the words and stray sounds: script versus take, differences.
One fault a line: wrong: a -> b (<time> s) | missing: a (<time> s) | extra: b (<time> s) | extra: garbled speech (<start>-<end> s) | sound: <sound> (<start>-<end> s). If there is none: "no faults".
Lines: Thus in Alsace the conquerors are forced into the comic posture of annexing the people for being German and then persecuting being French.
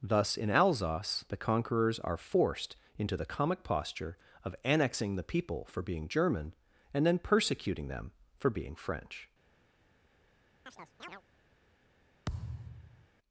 extra: them for (7.9 s)
sound: chirp (10.7-11.2 s)
sound: thud (12.3-13.1 s)